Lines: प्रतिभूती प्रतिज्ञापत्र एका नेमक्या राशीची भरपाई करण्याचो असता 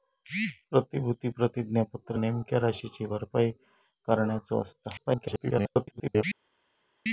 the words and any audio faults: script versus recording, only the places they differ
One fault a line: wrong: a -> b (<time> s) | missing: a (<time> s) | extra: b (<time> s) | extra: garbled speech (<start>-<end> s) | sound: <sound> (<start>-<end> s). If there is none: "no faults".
missing: एका (2.2 s)
extra: garbled speech (5.0-6.2 s)